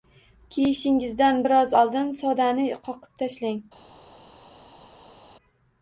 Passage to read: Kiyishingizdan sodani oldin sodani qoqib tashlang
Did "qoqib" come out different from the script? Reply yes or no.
no